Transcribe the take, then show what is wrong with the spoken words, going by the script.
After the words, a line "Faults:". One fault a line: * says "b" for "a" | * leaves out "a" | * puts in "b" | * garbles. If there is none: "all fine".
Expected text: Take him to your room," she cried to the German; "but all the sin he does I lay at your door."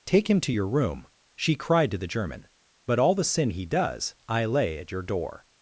Take him to your room," she cried to the German; "but all the sin he does I lay at your door."
Faults:
all fine